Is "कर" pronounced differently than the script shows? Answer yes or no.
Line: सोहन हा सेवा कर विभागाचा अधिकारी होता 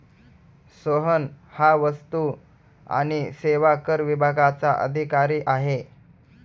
no